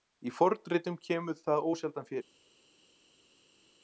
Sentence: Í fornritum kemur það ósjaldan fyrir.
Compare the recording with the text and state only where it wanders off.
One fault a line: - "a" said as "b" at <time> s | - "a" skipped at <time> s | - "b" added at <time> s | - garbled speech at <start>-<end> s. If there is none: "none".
none